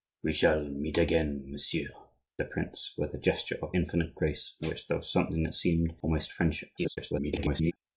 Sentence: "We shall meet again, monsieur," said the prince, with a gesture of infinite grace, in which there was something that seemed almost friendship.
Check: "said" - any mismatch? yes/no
yes